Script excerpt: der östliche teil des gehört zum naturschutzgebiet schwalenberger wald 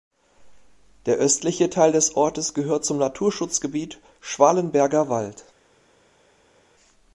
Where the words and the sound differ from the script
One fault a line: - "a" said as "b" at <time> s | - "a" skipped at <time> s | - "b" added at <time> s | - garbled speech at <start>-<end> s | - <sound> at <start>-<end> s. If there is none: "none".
- "ortes" added at 2.1 s